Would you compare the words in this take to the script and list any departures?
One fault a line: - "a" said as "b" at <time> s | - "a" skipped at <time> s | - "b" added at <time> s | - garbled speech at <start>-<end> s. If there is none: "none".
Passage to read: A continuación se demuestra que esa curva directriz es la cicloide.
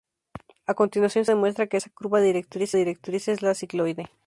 - "se" skipped at 1.2 s
- "directriz" added at 2.7 s